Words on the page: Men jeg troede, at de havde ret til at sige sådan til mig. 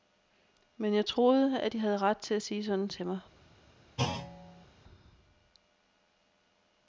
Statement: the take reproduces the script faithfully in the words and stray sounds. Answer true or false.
false